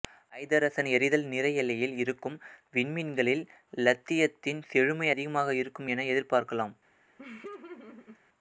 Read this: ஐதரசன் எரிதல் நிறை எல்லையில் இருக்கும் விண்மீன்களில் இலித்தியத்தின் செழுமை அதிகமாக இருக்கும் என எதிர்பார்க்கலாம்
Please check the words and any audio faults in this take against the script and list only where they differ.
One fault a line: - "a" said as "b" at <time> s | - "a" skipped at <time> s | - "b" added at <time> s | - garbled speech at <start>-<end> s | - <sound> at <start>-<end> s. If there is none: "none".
- laugh at 7.2-8.2 s